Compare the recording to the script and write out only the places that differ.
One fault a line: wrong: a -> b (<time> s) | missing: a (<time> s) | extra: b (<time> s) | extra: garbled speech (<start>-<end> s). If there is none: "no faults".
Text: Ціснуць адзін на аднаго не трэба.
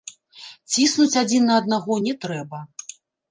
no faults